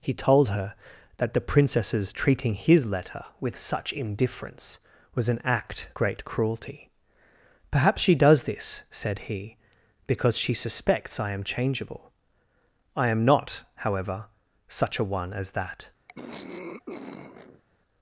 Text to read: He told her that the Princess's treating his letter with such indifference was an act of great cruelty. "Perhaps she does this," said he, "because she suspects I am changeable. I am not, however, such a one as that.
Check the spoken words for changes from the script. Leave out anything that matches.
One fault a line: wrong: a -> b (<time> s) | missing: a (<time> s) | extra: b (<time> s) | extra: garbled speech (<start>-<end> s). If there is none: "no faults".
missing: of (5.9 s)